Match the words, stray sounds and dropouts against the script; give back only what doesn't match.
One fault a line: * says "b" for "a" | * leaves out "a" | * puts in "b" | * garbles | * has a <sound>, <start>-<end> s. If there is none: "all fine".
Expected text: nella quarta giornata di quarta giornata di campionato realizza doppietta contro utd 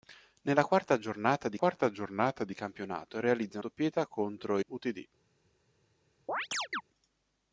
* has a chirp, 6.3-6.8 s